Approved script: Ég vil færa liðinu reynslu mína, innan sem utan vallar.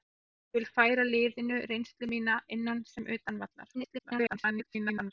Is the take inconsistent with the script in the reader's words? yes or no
yes